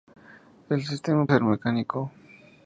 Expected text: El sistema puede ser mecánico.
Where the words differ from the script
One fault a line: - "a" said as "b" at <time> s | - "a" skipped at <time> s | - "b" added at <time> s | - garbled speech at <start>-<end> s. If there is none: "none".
- "puede" skipped at 1.3 s